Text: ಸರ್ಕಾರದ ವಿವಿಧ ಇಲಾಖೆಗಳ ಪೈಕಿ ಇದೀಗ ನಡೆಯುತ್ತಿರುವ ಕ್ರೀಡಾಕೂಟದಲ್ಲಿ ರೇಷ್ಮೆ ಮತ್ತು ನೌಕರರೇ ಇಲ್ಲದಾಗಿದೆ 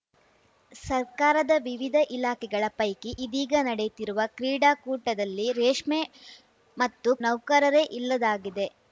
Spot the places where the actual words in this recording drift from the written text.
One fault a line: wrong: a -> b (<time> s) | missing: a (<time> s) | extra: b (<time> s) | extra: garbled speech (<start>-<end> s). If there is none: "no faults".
no faults